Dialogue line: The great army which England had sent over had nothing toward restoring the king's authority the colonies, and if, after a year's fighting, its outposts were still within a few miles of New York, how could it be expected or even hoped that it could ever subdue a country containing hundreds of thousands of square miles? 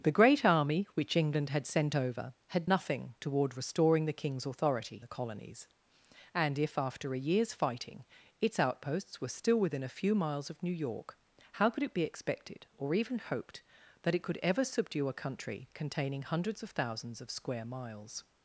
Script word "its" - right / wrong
right